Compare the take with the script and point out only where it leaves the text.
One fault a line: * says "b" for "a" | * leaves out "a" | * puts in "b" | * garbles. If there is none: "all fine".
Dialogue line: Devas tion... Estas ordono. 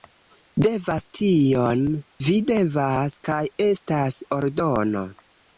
* puts in "Vi devas Kaj"